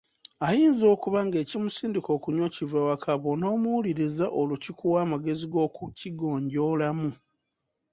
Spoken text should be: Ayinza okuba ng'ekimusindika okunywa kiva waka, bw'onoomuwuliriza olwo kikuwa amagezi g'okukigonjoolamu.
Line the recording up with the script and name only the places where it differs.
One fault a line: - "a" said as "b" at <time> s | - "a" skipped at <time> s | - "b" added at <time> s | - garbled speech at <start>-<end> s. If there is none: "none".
none